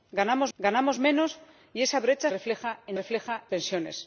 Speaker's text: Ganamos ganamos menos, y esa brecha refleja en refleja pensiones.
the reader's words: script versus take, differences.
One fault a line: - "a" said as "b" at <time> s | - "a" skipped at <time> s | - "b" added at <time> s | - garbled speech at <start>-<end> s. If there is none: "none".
none